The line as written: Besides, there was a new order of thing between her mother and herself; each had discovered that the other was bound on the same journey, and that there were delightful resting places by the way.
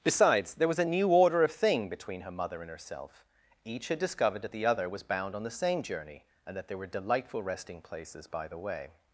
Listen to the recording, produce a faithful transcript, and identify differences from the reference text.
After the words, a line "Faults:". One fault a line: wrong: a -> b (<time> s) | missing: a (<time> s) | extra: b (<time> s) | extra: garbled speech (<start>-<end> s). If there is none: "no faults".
Besides, there was a new order of thing between her mother and herself; each had discovered that the other was bound on the same journey, and that there were delightful resting places by the way.
Faults:
no faults